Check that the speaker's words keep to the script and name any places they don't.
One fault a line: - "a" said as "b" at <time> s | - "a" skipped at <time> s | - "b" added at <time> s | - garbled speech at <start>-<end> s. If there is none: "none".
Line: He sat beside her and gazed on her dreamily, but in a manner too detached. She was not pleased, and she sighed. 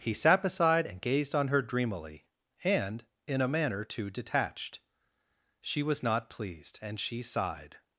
- "her" skipped at 0.9 s
- "but" said as "and" at 2.6 s